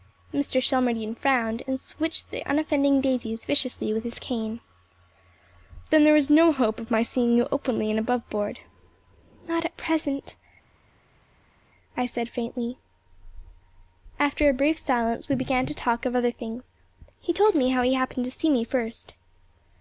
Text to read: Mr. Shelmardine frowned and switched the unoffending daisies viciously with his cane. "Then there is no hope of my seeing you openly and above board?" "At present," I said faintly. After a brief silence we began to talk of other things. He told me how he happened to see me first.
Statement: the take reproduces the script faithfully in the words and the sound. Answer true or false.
false